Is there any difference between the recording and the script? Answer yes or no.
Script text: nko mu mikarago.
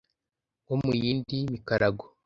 yes